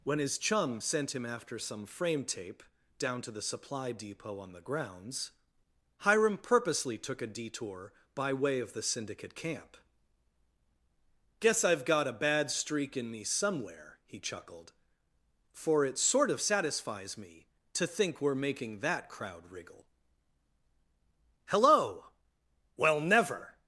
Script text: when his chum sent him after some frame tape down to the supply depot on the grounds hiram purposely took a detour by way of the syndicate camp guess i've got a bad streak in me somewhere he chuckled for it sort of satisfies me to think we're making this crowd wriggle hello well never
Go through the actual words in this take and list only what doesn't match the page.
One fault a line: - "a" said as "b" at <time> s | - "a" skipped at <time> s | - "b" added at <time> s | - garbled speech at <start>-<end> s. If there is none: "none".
- "this" said as "that" at 18.8 s